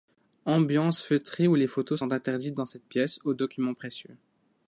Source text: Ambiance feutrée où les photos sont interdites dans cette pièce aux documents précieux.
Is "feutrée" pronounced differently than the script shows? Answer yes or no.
no